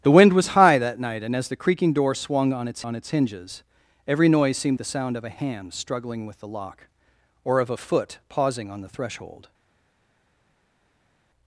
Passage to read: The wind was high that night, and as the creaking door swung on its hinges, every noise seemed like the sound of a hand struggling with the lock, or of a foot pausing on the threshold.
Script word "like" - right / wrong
wrong